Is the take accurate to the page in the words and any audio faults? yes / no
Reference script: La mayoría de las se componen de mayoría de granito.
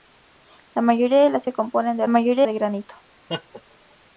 no